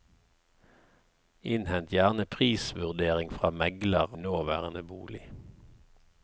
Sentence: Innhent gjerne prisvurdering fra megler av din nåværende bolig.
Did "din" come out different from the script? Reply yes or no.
yes